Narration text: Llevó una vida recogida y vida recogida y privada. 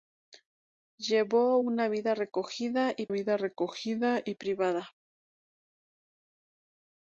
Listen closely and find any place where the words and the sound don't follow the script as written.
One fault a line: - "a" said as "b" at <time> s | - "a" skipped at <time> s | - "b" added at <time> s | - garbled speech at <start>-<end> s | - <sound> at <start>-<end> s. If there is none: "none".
none